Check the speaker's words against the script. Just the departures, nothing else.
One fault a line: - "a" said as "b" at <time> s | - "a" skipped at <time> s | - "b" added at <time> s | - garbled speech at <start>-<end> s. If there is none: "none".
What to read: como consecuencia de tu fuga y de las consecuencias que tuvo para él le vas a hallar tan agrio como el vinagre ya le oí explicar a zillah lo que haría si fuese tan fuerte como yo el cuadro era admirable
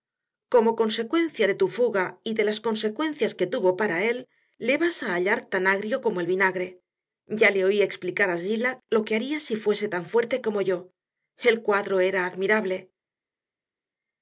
none